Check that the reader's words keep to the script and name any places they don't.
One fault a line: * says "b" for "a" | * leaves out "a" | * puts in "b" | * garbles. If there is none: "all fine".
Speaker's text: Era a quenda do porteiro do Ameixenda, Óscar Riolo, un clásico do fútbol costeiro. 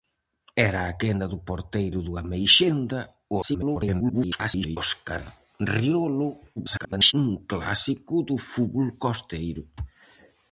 * garbles
* garbles